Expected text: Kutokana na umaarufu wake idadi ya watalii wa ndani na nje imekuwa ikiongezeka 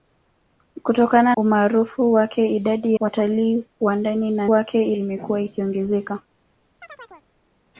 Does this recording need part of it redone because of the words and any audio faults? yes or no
yes